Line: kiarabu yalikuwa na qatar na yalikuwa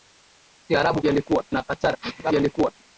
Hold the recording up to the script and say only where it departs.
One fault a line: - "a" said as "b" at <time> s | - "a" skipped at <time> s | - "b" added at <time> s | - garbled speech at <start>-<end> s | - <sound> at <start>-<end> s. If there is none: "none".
none